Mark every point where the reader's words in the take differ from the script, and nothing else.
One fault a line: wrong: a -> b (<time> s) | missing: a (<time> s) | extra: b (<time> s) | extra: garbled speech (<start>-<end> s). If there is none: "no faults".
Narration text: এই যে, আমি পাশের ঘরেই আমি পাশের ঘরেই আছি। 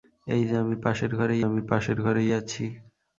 no faults